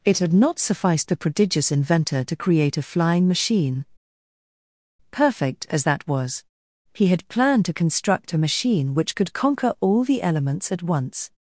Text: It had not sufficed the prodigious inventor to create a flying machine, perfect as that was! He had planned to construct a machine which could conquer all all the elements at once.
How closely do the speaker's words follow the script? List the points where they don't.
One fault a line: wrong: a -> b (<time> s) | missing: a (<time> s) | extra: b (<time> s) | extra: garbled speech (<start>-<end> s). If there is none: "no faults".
missing: all (10.0 s)